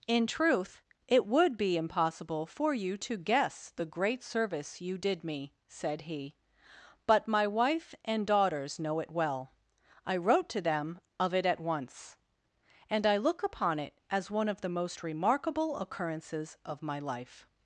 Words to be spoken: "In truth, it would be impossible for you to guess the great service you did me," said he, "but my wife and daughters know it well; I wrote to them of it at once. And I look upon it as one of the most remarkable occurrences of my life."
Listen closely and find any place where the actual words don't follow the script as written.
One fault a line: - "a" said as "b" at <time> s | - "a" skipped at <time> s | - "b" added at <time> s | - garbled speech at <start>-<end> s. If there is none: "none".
none